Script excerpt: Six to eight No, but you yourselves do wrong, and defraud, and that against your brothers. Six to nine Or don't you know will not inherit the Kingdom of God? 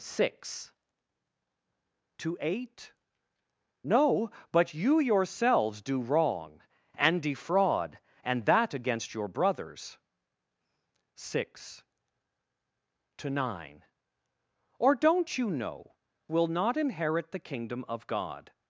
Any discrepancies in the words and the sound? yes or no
no